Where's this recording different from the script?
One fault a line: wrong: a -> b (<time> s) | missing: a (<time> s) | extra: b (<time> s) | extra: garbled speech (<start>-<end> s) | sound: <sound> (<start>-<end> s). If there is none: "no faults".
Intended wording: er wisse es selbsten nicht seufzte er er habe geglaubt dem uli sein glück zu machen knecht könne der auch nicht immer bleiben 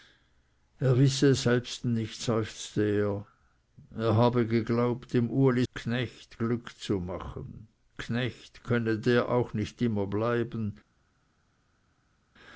wrong: sein -> knecht (5.7 s)